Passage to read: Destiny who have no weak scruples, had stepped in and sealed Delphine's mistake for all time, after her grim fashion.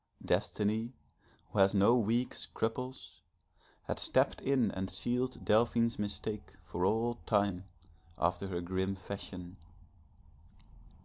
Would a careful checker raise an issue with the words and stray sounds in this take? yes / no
yes